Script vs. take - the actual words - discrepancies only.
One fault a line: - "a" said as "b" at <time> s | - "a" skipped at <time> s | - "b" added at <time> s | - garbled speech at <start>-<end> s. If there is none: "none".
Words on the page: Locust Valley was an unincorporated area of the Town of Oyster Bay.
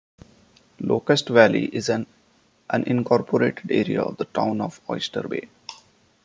- "was" said as "is" at 1.7 s